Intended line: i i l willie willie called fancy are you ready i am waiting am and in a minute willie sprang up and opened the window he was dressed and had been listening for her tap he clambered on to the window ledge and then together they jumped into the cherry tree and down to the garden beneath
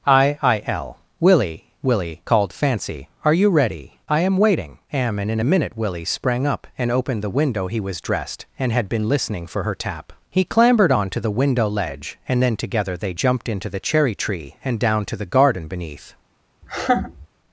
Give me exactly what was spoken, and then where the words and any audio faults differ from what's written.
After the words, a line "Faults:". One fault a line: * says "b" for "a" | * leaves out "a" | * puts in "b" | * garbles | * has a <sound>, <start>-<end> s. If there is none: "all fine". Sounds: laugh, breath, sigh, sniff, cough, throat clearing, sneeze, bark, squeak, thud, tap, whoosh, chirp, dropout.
i i l willie willie called fancy are you ready i am waiting am and in a minute willie sprang up and opened the window he was dressed and had been listening for her tap he clambered on to the window ledge and then together they jumped into the cherry tree and down to the garden beneath
Faults:
* has a laugh, 16.6-17.3 s